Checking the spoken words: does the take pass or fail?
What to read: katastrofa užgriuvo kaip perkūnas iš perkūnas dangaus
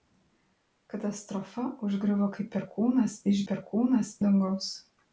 pass